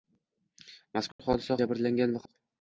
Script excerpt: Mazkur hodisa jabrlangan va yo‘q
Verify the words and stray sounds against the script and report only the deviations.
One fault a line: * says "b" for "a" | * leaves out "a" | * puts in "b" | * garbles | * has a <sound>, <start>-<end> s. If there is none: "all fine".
* has a dropout, 1.1-1.2 s